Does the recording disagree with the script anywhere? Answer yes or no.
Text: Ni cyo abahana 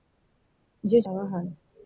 no